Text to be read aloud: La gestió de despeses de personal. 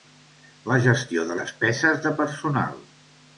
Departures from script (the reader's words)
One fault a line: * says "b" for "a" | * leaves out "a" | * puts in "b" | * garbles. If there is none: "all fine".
all fine